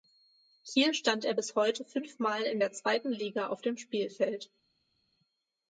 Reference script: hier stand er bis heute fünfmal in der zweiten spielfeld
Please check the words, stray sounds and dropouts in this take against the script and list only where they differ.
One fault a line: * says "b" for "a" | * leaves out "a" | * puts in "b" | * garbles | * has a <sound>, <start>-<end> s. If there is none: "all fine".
* puts in "liga auf dem"